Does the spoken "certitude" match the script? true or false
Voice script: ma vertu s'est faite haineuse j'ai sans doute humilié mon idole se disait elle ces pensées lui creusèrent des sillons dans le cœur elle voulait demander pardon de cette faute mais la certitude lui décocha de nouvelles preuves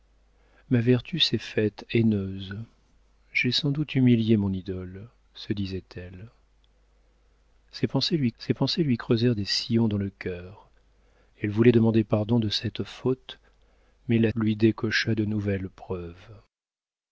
false